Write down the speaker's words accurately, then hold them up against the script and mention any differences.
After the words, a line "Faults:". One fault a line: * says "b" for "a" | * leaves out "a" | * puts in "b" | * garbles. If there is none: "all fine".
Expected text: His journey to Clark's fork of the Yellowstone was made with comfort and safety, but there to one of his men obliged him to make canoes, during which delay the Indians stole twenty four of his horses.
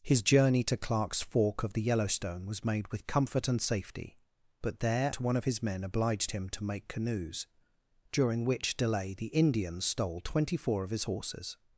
His journey to Clark's fork of the Yellowstone was made with comfort and safety, but there to one of his men obliged him to make canoes, during which delay the Indians stole twenty four of his horses.
Faults:
all fine